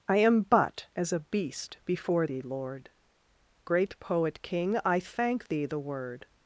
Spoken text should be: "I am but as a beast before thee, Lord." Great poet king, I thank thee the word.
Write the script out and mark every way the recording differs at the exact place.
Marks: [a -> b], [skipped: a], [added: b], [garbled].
"I am but as a beast before thee, Lord." Great poet king, I thank thee the word.